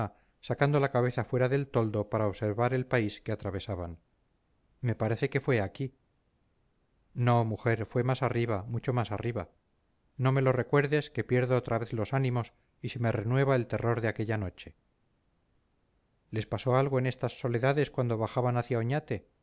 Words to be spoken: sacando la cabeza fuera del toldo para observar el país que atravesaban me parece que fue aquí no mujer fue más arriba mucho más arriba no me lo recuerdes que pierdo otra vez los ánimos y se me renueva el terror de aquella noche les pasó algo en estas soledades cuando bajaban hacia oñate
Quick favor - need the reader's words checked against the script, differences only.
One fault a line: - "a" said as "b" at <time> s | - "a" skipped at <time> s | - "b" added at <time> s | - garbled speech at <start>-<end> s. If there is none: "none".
none